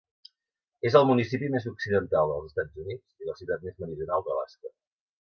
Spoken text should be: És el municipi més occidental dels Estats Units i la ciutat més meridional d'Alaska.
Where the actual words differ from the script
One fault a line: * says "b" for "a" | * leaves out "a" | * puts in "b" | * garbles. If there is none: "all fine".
all fine